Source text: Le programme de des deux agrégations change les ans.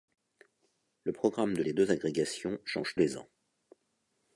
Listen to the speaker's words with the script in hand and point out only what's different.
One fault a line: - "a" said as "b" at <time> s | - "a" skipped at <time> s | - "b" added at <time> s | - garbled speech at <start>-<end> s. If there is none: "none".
none